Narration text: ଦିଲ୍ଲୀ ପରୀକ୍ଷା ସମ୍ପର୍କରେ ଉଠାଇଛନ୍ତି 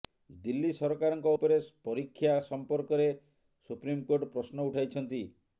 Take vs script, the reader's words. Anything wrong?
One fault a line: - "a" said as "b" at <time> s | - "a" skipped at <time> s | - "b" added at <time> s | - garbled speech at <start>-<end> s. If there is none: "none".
- "ସରକାରଙ୍କ ଉପରେ" added at 0.8 s
- "ସୁପ୍ରିମକୋର୍ଟ ପ୍ରଶ୍ନ" added at 3.7 s